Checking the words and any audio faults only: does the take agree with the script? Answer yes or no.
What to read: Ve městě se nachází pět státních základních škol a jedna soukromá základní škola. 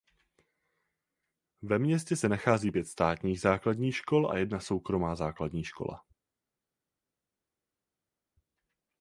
yes